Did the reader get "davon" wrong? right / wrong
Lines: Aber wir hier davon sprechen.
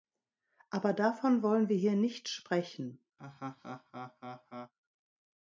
wrong